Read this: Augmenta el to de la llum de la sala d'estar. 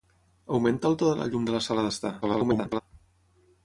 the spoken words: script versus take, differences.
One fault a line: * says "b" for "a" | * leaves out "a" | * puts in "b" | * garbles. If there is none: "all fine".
* garbles